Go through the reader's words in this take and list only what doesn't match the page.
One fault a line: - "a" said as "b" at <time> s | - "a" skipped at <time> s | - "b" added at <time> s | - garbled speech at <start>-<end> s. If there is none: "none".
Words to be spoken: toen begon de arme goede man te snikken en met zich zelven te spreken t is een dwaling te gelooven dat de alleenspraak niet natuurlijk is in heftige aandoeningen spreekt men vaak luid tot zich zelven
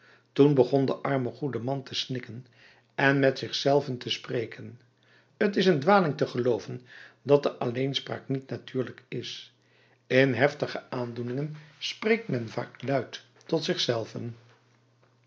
none